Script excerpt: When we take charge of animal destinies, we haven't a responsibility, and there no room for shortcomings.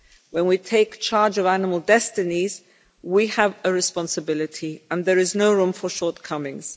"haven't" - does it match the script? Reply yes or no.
no